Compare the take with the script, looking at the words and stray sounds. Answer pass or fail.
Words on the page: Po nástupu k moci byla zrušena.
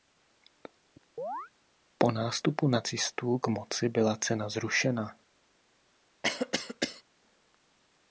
fail